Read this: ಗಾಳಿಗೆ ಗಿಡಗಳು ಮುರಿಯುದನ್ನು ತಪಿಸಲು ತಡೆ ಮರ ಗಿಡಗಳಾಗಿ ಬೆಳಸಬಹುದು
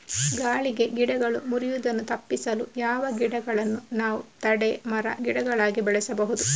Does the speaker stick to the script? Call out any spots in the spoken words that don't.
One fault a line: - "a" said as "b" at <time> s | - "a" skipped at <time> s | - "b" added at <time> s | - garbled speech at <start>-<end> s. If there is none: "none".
- "ಯಾವ ಗಿಡಗಳನ್ನು ನಾವು" added at 2.8 s